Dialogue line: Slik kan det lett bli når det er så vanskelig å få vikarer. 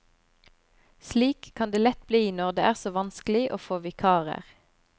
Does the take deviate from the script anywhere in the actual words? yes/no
no